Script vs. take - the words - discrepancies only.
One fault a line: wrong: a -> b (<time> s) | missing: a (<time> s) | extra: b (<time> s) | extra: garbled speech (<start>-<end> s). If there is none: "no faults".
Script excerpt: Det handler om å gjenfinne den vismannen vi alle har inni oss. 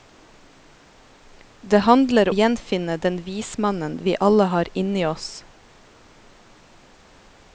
missing: om (2.3 s)